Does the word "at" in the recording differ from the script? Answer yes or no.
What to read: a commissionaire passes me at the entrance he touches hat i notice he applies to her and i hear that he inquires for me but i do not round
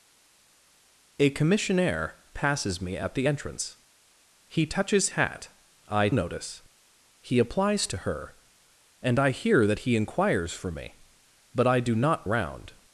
no